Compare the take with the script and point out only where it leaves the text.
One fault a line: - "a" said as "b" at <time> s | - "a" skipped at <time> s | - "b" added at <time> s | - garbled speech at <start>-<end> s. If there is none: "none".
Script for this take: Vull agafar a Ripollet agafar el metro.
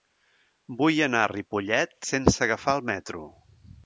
- "agafar" said as "anar" at 1.1 s
- "sense" added at 2.1 s